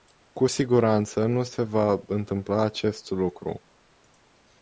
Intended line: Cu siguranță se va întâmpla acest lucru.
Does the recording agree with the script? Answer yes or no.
no